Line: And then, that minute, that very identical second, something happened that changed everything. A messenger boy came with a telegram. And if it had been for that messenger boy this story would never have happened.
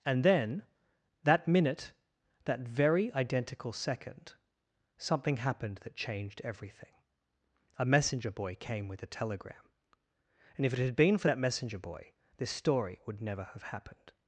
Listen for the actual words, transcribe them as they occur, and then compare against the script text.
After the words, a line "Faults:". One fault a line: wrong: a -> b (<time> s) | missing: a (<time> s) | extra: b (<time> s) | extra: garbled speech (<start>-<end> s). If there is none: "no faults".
And then, that minute, that very identical second, something happened that changed everything. A messenger boy came with a telegram. And if it had been for that messenger boy this story would never have happened.
Faults:
no faults